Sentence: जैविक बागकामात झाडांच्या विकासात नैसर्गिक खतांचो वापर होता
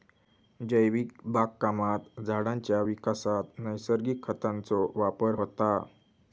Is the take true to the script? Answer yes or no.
yes